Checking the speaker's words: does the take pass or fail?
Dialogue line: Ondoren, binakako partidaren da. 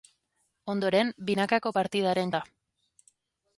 pass